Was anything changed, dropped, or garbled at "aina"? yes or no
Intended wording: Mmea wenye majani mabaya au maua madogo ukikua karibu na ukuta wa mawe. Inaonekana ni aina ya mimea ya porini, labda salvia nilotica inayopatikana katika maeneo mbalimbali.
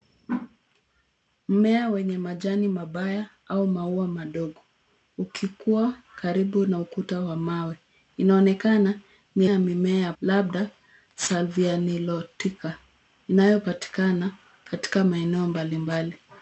yes